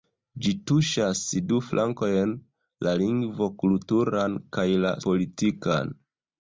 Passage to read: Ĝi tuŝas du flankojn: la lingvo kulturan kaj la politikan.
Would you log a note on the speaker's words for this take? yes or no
no